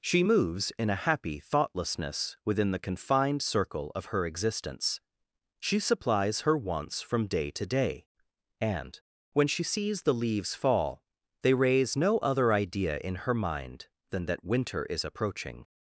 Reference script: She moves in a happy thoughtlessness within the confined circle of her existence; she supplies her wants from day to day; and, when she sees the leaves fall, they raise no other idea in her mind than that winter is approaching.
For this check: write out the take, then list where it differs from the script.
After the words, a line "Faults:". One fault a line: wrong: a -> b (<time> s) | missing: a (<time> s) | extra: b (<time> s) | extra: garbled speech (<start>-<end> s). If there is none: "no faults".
She moves in a happy thoughtlessness within the confined circle of her existence; she supplies her wants from day to day; and, when she sees the leaves fall, they raise no other idea in her mind than that winter is approaching.
Faults:
no faults